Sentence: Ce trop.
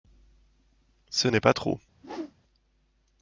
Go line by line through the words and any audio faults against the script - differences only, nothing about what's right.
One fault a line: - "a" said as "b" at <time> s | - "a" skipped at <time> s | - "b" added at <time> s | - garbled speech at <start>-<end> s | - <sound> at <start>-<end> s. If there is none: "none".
- "n'est pas" added at 1.2 s
- whoosh at 1.9-2.3 s